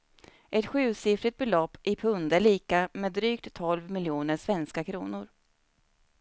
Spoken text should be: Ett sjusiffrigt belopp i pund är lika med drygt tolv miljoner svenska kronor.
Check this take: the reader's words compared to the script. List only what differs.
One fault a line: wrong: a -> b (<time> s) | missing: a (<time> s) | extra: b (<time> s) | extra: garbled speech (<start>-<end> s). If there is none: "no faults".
no faults